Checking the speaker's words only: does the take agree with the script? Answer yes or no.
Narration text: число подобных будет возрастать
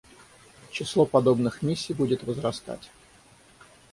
no